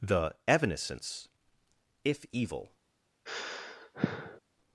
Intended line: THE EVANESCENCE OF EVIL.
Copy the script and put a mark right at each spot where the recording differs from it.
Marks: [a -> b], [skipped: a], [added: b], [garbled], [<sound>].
THE EVANESCENCE [OF -> If] EVIL. [sigh]